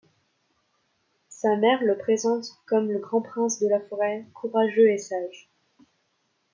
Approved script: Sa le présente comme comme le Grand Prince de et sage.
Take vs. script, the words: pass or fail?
fail